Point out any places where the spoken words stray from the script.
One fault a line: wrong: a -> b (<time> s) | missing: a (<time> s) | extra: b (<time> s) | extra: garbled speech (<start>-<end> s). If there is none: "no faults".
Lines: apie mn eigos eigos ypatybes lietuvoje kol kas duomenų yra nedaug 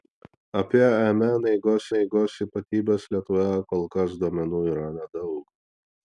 no faults